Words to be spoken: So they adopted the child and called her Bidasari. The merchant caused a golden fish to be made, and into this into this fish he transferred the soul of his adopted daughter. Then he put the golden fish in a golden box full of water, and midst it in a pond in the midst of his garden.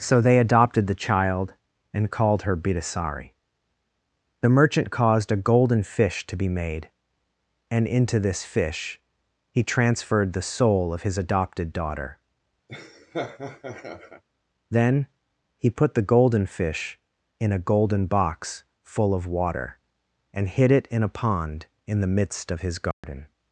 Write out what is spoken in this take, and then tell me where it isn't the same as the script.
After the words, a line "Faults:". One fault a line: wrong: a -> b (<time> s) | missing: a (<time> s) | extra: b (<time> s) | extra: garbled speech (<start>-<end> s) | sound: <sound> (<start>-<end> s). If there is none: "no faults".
So they adopted the child and called her Bidasari. The merchant caused a golden fish to be made, and into this fish he transferred the soul of his adopted daughter. Then he put the golden fish in a golden box full of water, and hid it in a pond in the midst of his garden.
Faults:
missing: into this (8.4 s)
sound: laugh (12.7-14.2 s)
wrong: midst -> hid (20.5 s)
sound: dropout (22.9-23.0 s)